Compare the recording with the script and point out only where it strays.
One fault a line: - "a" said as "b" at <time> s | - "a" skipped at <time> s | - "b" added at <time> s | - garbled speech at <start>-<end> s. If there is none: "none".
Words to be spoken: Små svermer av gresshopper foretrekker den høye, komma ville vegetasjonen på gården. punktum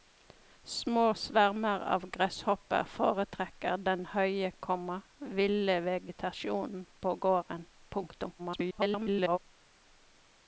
- garbled speech at 8.4-9.4 s